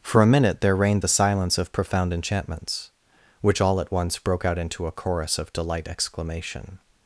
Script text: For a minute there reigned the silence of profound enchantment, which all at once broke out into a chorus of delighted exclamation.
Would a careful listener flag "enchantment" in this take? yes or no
yes